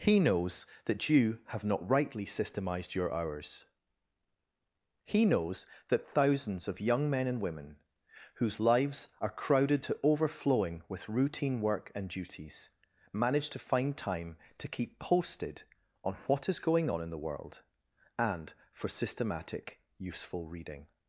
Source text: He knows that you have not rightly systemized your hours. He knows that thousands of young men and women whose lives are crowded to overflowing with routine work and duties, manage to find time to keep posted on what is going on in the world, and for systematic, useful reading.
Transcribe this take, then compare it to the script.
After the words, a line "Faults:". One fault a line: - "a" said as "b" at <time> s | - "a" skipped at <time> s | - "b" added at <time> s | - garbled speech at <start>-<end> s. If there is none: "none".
He knows that you have not rightly systemized your hours. He knows that thousands of young men and women whose lives are crowded to overflowing with routine work and duties, manage to find time to keep posted on what is going on in the world, and for systematic, useful reading.
Faults:
none